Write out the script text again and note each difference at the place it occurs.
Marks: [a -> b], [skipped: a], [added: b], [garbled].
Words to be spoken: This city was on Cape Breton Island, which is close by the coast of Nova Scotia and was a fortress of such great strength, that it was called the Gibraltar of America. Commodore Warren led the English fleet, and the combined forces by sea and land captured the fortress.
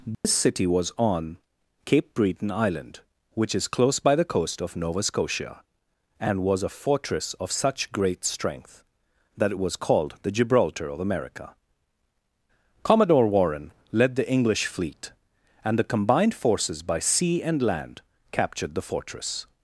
This city was on Cape Breton Island, which is close by the coast of Nova Scotia and was a fortress of such great strength, that it was called the Gibraltar of America. Commodore Warren led the English fleet, and the combined forces by sea and land captured the fortress.